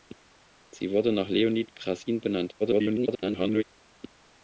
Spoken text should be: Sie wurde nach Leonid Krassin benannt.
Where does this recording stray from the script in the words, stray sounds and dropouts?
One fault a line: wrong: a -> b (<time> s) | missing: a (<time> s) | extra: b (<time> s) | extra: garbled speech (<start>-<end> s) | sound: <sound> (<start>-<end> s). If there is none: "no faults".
extra: garbled speech (2.6-3.6 s)